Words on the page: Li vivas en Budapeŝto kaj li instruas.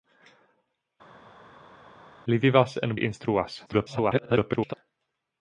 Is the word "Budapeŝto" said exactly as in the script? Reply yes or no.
no